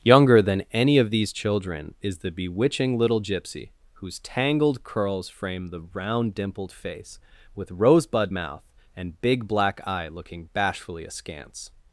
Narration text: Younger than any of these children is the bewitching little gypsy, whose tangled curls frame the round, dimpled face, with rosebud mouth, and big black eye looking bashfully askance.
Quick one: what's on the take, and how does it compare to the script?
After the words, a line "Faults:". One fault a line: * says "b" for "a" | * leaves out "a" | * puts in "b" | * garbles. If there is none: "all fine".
Younger than any of these children is the bewitching little gypsy, whose tangled curls frame the round, dimpled face, with rosebud mouth, and big black eye looking bashfully askance.
Faults:
all fine